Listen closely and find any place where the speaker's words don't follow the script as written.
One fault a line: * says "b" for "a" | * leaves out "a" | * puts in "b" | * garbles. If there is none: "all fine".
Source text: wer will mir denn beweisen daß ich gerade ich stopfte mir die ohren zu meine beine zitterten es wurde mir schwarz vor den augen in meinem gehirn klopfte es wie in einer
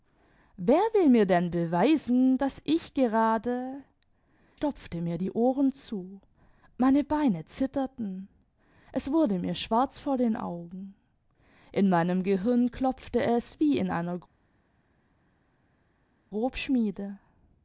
* leaves out "ich"